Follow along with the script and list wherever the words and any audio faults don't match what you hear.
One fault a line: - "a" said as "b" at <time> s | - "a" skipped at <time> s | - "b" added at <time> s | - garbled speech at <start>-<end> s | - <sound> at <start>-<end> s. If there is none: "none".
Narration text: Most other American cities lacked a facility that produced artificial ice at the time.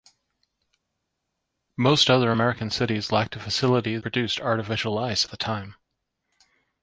- "that" skipped at 4.0 s
- "at" skipped at 5.3 s